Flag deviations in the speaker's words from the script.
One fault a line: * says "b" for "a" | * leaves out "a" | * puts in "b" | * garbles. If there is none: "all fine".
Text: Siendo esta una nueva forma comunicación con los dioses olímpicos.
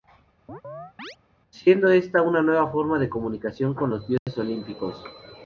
* puts in "de"